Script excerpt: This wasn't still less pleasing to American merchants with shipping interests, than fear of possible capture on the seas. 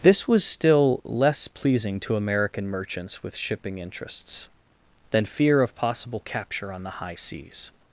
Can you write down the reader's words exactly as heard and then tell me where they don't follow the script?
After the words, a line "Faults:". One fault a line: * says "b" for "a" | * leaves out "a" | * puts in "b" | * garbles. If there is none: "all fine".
This was still less pleasing to American merchants with shipping interests, than fear of possible capture on the high seas.
Faults:
* says "was" for "wasn't"
* puts in "high"